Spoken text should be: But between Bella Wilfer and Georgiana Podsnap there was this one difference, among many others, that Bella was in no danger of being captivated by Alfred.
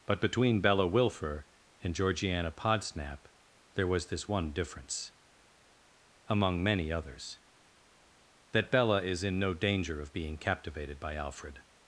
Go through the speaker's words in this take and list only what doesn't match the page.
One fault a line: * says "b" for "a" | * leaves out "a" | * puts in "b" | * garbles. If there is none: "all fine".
* says "is" for "was"